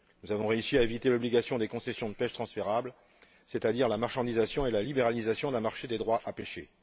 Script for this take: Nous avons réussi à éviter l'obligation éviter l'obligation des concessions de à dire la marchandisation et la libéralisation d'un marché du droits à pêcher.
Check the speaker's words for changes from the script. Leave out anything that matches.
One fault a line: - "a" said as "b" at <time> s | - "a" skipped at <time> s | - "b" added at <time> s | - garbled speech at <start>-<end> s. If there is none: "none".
- "éviter l'obligation" skipped at 1.6 s
- "pêche transférables c'est" added at 2.1 s
- "du" said as "des" at 5.9 s